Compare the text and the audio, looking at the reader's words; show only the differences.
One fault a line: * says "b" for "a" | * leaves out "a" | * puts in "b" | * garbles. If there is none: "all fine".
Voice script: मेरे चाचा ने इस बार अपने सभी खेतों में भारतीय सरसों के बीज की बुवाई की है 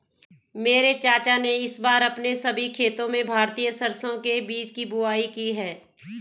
all fine